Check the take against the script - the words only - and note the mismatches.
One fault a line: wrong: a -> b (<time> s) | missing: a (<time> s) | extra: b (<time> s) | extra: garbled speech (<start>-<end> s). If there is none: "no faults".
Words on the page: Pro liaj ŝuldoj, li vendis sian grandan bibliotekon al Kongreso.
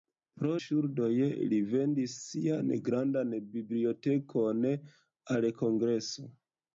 missing: liaj (0.5 s)